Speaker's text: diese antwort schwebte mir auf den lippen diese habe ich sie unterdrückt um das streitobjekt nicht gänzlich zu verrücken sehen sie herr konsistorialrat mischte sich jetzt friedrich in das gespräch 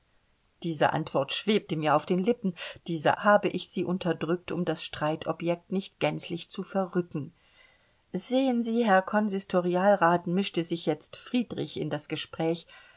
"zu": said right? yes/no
yes